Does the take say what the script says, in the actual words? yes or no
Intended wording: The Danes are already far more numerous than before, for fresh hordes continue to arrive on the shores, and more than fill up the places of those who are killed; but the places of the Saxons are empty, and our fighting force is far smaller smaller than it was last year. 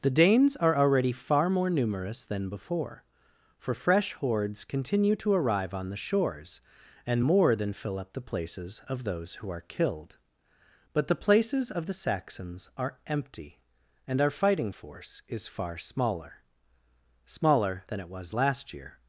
yes